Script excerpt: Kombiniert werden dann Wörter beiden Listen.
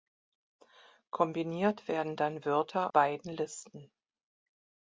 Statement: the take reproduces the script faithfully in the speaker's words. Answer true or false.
true